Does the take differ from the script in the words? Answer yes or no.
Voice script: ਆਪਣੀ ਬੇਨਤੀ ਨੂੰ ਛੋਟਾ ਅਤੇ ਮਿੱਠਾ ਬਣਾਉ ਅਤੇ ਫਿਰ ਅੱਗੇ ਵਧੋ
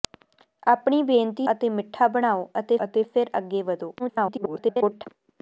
yes